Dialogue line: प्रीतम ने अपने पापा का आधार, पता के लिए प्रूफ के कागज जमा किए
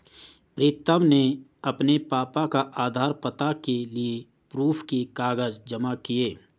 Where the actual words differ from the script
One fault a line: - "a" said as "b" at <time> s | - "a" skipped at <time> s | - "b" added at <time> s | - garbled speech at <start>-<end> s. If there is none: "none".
none